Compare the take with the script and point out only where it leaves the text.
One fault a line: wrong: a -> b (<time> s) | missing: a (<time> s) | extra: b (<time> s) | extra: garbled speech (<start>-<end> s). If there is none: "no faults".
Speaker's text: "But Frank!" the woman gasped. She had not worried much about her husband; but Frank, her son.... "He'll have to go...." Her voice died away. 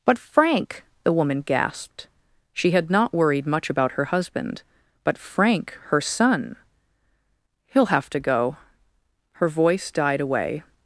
no faults